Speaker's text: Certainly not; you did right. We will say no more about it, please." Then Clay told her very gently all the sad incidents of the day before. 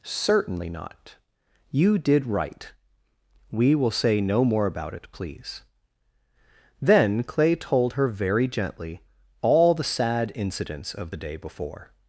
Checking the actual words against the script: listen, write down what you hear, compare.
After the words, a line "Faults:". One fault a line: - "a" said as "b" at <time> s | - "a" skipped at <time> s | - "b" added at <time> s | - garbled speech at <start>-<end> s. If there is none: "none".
Certainly not; you did right. We will say no more about it, please." Then Clay told her very gently all the sad incidents of the day before.
Faults:
none